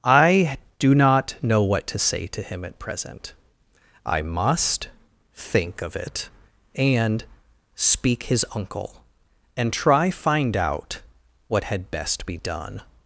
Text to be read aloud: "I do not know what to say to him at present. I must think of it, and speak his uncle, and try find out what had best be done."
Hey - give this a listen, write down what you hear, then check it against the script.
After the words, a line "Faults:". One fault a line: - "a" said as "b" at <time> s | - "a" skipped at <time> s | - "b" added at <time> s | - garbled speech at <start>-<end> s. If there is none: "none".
"I do not know what to say to him at present. I must think of it, and speak his uncle, and try find out what had best be done."
Faults:
none